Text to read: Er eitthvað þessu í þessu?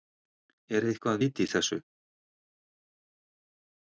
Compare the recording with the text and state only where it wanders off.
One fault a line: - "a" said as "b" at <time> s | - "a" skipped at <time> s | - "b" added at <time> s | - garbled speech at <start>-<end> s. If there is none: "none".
- "þessu" said as "vit" at 1.2 s